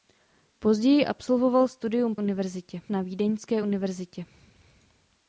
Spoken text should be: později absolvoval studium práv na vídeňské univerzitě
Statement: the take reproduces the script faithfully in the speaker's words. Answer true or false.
false